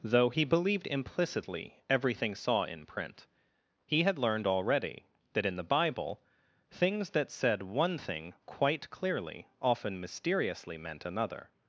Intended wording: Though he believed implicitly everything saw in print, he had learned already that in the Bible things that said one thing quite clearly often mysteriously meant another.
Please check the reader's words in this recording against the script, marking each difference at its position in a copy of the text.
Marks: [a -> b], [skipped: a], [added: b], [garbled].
Though he believed implicitly everything saw in print, he had learned already that in the Bible things that said one thing quite clearly often mysteriously meant another.